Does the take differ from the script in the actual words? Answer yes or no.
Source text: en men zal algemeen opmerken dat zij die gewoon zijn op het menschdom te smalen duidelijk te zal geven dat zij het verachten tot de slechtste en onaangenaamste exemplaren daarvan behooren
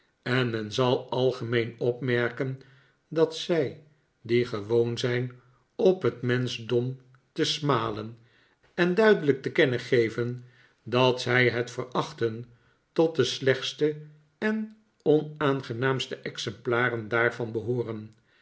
yes